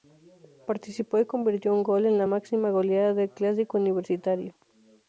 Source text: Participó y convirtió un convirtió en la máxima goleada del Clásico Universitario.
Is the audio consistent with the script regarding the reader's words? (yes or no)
no